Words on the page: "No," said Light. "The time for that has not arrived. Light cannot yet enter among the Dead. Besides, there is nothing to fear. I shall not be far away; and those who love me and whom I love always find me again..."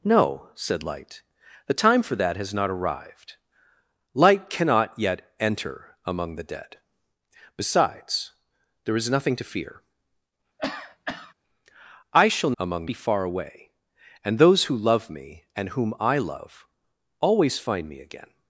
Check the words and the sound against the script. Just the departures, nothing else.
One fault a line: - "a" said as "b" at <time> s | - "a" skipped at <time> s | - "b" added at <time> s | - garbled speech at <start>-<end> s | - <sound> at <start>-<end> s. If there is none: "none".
- cough at 10.6-11.3 s
- "not" said as "among" at 12.6 s